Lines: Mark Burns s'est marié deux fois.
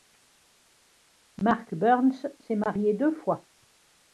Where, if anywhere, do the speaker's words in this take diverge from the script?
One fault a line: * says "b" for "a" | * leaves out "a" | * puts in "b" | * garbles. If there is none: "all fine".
all fine